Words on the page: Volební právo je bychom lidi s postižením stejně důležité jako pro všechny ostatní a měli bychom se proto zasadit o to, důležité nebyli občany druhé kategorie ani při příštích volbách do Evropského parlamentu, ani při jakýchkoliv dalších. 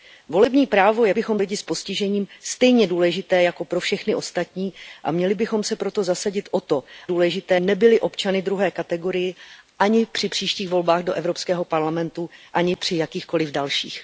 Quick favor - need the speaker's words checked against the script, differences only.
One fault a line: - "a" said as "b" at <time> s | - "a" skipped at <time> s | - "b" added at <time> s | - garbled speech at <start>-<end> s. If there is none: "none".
none